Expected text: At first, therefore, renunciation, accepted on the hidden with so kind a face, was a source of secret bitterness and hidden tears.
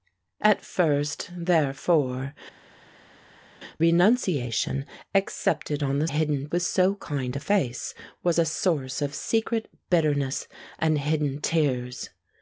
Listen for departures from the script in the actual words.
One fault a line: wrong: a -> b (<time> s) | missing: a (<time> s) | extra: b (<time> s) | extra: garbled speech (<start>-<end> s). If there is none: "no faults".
no faults